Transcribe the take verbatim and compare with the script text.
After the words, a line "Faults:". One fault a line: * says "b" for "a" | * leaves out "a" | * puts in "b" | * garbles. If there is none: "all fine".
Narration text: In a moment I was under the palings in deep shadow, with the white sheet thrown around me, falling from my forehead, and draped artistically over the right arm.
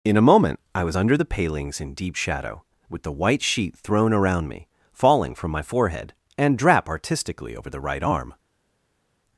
In a moment I was under the palings in deep shadow, with the white sheet thrown around me, falling from my forehead, and drap artistically over the right arm.
Faults:
* says "drap" for "draped"